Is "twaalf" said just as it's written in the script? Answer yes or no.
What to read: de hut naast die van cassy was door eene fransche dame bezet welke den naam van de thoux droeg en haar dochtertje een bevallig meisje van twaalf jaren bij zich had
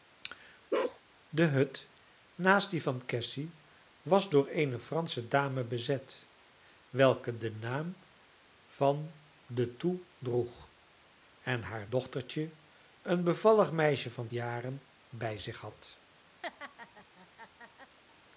no